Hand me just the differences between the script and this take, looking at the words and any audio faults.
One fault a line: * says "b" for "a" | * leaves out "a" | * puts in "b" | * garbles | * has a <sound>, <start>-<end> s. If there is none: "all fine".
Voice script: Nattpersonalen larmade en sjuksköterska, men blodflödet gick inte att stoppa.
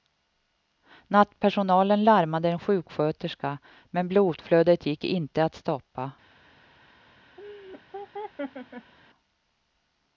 * has a laugh, 7.4-8.9 s